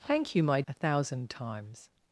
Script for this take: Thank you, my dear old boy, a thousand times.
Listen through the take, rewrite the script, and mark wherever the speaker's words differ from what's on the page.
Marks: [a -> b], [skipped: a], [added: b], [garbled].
Thank you, my [skipped: dear old boy,] a thousand times.